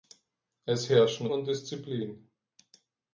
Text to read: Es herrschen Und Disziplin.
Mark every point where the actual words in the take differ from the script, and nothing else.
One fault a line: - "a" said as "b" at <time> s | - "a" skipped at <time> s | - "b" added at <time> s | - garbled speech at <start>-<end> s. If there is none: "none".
none